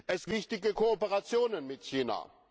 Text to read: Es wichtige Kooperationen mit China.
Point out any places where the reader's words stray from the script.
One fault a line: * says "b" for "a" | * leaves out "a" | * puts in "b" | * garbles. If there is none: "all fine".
all fine